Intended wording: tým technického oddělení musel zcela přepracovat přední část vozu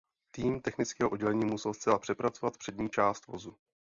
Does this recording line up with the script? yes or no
yes